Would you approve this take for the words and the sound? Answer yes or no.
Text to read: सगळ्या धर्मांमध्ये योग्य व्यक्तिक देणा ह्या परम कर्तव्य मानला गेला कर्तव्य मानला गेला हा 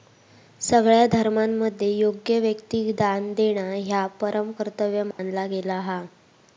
no